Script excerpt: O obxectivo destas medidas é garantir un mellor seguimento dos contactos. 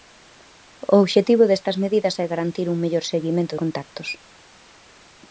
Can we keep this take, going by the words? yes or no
no